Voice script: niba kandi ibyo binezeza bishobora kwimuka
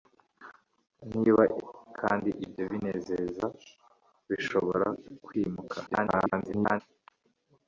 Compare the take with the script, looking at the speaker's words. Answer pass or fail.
fail